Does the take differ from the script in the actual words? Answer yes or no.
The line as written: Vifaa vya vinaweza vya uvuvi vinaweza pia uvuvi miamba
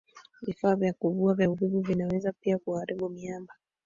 yes